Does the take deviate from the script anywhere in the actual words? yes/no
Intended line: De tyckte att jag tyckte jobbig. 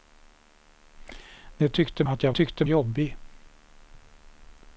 no